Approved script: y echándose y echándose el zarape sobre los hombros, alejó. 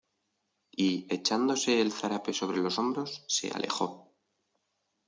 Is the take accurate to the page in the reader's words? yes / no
no